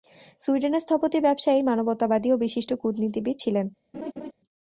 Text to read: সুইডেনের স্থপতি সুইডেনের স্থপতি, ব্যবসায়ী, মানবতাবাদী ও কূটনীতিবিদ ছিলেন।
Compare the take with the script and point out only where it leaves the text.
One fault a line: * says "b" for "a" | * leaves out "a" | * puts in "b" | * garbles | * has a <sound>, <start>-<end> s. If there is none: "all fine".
* leaves out "সুইডেনের স্থপতি"
* puts in "বিশিষ্ট"
* has a laugh, 3.9-4.3 s